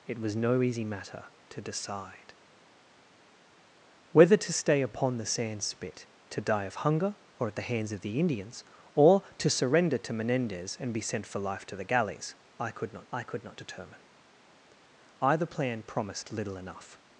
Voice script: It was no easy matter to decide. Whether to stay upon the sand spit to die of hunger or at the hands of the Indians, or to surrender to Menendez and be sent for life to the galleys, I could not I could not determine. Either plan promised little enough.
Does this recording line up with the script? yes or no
yes